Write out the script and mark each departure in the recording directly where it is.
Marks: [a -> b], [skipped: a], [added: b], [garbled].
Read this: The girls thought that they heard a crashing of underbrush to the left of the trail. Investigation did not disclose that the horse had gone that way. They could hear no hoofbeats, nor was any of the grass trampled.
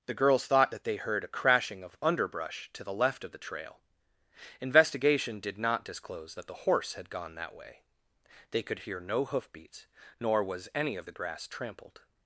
The girls thought that they heard a crashing of underbrush to the left of the trail. Investigation did not disclose that the horse had gone that way. They could hear no hoofbeats, nor was any of the grass trampled.